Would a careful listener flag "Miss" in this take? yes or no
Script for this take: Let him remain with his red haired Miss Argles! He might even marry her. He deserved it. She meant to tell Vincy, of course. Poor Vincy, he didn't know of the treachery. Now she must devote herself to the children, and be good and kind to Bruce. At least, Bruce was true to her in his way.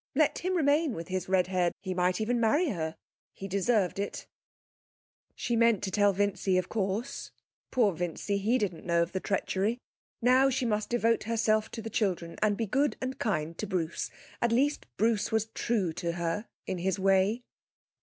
yes